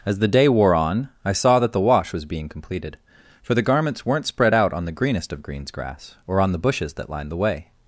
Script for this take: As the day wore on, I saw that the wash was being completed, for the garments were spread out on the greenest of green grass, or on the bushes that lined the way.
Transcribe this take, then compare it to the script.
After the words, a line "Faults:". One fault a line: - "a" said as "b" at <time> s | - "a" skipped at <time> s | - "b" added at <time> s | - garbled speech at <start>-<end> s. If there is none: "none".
As the day wore on, I saw that the wash was being completed, for the garments weren't spread out on the greenest of greens grass, or on the bushes that lined the way.
Faults:
- "were" said as "weren't" at 4.0 s
- "green" said as "greens" at 5.4 s